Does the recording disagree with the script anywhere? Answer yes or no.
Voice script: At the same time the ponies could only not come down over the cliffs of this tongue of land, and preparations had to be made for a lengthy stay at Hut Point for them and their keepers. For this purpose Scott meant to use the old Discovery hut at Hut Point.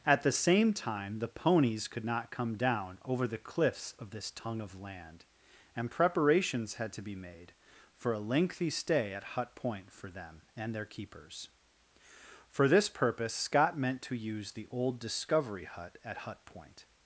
yes